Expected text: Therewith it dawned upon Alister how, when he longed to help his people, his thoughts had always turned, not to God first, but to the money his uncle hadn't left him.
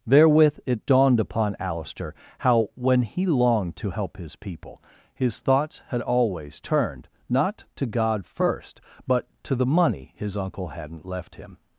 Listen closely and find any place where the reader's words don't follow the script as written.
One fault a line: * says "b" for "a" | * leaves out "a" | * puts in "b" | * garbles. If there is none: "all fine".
all fine